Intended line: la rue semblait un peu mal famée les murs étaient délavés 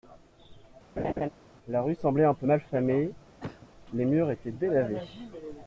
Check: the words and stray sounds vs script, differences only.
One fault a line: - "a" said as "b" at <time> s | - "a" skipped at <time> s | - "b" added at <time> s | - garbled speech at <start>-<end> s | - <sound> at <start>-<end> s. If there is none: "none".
- laugh at 1.0-1.3 s
- cough at 3.4-3.7 s